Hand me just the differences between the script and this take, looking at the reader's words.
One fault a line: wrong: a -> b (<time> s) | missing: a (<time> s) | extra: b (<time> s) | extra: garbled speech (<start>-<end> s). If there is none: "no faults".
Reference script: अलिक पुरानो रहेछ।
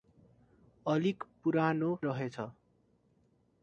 no faults